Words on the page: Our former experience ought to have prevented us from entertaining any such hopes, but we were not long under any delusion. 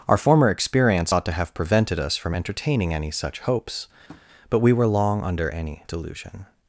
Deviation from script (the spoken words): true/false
true